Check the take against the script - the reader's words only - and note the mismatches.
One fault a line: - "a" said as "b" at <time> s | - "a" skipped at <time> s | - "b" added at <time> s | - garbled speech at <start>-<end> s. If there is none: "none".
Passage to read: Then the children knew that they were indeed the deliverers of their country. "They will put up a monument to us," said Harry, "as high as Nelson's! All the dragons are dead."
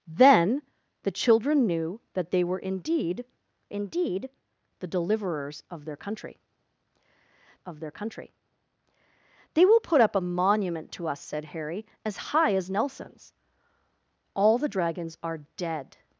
- "indeed" added at 3.7 s
- "of their country" added at 7.6 s